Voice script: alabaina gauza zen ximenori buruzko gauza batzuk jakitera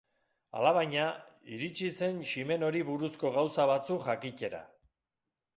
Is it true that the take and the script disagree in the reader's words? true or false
true